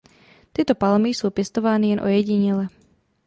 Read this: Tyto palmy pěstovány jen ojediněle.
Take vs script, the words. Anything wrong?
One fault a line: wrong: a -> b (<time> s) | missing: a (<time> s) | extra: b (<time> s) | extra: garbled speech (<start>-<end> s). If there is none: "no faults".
extra: jsou (1.1 s)